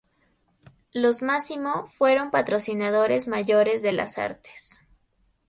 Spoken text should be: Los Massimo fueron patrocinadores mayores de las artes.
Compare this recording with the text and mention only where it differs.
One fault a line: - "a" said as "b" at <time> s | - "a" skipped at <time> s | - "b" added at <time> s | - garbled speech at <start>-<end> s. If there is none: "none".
none